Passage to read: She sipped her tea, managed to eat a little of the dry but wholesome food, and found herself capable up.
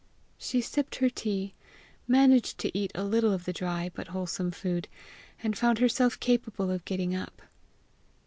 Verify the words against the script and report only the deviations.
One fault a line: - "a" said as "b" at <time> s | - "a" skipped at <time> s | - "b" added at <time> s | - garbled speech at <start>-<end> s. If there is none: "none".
- "of getting" added at 6.7 s